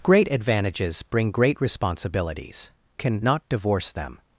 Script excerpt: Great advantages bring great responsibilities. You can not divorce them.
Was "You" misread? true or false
true